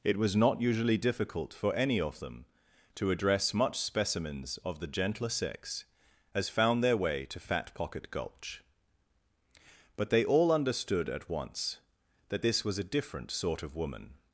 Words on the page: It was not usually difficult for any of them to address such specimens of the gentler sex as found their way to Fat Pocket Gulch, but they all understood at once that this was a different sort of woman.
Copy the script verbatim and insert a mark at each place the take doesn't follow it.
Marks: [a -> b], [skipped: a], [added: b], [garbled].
It was not usually difficult for any of them to address [such -> much] specimens of the gentler sex as found their way to Fat Pocket Gulch, but they all understood at once that this was a different sort of woman.